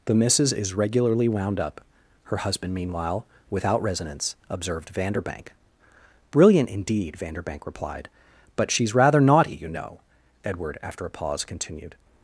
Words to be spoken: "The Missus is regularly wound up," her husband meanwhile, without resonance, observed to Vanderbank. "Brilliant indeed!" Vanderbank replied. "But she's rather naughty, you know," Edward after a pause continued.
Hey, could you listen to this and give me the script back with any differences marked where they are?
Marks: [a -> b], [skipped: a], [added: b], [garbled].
"The Missus is regularly wound up," her husband meanwhile, without resonance, observed [skipped: to] Vanderbank. "Brilliant indeed!" Vanderbank replied. "But she's rather naughty, you know," Edward after a pause continued.